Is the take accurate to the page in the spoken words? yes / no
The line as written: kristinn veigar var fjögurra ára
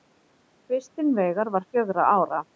yes